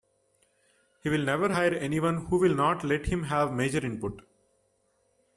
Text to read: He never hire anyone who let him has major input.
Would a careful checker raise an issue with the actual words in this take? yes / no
yes